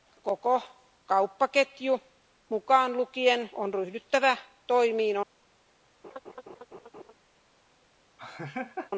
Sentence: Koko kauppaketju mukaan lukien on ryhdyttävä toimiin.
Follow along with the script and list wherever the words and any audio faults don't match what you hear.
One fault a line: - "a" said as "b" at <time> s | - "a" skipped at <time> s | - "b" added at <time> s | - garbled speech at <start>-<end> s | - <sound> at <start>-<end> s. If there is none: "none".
- laugh at 6.0-7.1 s
- laugh at 8.2-8.9 s